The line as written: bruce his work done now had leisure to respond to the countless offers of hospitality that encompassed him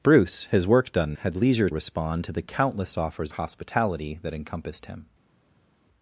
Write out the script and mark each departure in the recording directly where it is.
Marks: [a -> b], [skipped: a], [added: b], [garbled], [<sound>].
bruce his work done [skipped: now] had leisure [skipped: to] respond to the countless offers [skipped: of] hospitality that encompassed him